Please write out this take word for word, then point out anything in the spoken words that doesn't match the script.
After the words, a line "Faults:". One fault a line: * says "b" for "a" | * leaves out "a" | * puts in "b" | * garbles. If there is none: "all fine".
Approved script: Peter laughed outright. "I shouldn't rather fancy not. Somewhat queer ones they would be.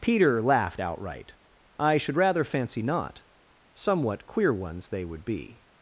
Peter laughed outright. "I should rather fancy not. Somewhat queer ones they would be.
Faults:
* says "should" for "shouldn't"